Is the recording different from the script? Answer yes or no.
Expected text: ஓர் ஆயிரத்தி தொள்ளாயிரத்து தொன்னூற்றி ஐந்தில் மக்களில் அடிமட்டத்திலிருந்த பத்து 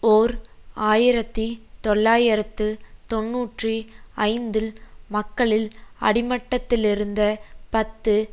no